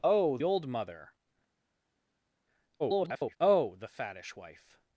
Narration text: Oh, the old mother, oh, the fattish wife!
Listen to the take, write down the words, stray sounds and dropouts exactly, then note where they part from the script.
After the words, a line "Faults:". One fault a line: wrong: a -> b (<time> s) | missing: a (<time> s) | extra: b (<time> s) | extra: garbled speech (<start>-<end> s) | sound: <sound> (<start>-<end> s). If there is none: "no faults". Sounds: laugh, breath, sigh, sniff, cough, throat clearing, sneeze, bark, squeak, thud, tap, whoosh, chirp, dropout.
Oh, old mother, [garbled] oh, the fattish wife!
Faults:
missing: the (0.4 s)
extra: garbled speech (2.8-3.4 s)